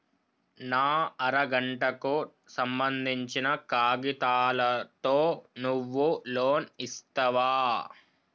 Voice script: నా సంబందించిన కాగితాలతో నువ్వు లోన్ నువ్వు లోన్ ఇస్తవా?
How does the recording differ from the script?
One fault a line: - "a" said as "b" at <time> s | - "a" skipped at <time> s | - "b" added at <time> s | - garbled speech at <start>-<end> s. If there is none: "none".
- "అర గంటకు" added at 1.2 s
- "నువ్వు లోన్" skipped at 6.7 s